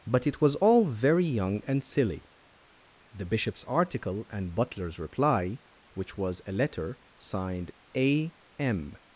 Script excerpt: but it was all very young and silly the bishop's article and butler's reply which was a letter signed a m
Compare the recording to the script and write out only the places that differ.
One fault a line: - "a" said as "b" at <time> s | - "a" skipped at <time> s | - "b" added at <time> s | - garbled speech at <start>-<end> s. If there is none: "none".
none